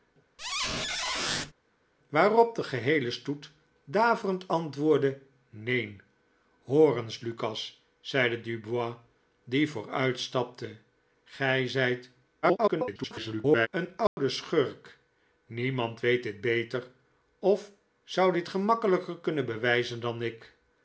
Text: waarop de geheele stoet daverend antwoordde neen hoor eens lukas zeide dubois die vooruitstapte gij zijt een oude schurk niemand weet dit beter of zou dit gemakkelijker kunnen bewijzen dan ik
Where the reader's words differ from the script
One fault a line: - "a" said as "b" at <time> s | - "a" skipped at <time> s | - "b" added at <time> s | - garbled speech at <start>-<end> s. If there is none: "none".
- garbled speech at 12.4-13.7 s